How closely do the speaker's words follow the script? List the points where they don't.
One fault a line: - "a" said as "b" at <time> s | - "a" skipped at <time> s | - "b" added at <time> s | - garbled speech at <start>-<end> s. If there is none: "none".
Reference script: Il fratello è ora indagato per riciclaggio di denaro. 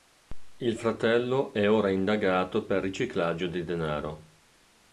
none